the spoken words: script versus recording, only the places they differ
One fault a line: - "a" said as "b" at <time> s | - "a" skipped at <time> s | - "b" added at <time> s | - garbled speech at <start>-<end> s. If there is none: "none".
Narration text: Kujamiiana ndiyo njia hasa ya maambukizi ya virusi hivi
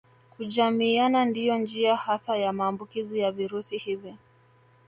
none